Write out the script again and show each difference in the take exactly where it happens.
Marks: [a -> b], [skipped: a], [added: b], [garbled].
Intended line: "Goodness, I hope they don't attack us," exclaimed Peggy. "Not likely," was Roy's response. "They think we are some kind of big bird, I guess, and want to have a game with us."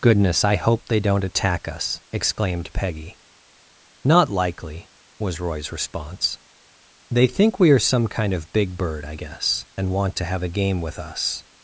"Goodness, I hope they don't attack us," exclaimed Peggy. "Not likely," was Roy's response. "They think we are some kind of big bird, I guess, and want to have a game with us."